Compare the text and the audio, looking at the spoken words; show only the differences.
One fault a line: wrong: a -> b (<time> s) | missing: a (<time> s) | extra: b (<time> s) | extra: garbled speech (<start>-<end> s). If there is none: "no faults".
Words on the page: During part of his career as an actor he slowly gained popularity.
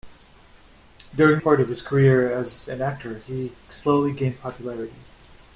no faults